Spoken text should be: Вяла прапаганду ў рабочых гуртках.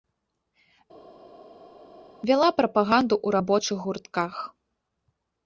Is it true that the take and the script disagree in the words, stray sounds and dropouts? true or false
false